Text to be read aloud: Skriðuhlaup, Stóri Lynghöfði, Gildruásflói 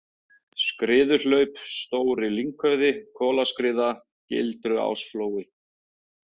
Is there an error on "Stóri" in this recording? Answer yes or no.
no